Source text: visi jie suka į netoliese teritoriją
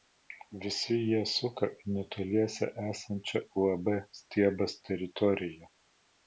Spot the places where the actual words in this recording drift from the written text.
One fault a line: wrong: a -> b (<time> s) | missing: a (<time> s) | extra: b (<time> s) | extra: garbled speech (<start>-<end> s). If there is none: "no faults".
extra: esančią uab stiebas (2.9 s)